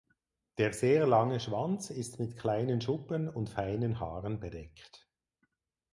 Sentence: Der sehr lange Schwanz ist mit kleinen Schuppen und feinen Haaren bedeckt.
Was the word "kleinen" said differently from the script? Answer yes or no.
no